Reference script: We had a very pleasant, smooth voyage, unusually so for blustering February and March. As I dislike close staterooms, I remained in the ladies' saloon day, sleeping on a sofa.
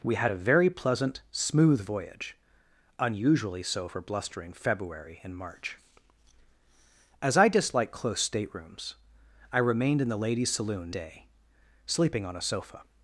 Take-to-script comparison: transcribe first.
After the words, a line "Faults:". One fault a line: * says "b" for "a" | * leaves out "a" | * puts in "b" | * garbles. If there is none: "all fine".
We had a very pleasant, smooth voyage, unusually so for blustering February and March. As I dislike close staterooms, I remained in the ladies' saloon day, sleeping on a sofa.
Faults:
all fine